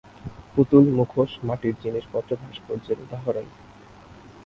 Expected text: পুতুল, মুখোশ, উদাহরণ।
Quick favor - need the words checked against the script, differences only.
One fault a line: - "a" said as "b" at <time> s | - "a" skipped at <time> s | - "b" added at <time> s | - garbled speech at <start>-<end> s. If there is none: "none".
- "মাটির জিনিসপত্র ভাস্কর্যের" added at 1.4 s